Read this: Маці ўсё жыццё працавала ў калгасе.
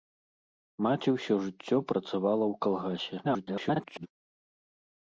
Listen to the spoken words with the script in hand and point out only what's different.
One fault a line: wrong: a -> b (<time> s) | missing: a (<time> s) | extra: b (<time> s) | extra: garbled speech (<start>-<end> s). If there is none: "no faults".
extra: garbled speech (3.2-4.1 s)